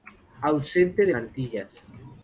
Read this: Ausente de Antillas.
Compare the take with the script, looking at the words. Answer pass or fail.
pass